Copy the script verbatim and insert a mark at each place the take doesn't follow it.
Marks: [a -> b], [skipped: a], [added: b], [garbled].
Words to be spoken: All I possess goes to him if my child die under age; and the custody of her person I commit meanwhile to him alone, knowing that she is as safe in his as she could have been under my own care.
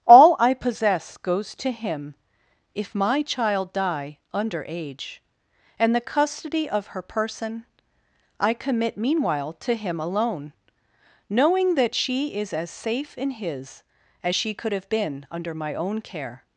All I possess goes to him if my child die under age; and the custody of her person I commit meanwhile to him alone, knowing that she is as safe in his as she could have been under my own care.